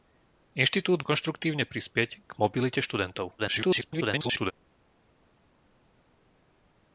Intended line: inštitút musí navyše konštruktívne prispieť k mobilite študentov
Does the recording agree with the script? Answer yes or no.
no